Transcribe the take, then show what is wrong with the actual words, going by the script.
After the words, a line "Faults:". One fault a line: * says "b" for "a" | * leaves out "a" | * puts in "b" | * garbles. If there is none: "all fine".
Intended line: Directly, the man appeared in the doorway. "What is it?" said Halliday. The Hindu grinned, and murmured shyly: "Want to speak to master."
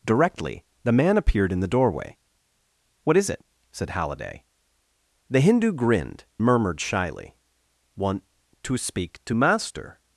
Directly, the man appeared in the doorway. "What is it?" said Halliday. The Hindu grinned, murmured shyly: "Want to speak to master."
Faults:
* leaves out "and"